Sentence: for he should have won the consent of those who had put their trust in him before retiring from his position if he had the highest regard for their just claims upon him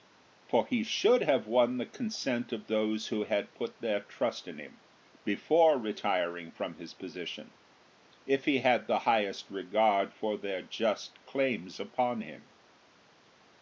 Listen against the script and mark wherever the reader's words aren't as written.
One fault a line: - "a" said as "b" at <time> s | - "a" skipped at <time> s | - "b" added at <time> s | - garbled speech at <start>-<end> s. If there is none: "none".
none